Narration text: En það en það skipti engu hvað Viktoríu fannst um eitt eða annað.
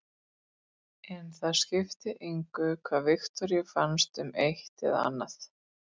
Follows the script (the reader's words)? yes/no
no